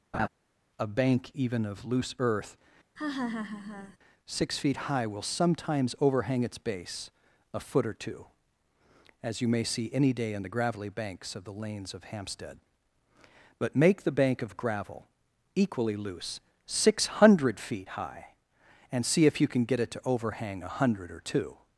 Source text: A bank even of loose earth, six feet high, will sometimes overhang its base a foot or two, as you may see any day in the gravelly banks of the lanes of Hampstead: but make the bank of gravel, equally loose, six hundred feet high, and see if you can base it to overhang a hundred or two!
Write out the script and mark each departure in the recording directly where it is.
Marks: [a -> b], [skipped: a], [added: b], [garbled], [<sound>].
[laugh] A bank even of loose earth, [laugh] six feet high, will sometimes overhang its base a foot or two, as you may see any day in the gravelly banks of the lanes of Hampstead: but make the bank of gravel, equally loose, six hundred feet high, and see if you can [base -> get] it to overhang a hundred or two!